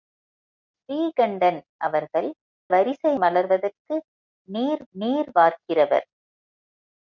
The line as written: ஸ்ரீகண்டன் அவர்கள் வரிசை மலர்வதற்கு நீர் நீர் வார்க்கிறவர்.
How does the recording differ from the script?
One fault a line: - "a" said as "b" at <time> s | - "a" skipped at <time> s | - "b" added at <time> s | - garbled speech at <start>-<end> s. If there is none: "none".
none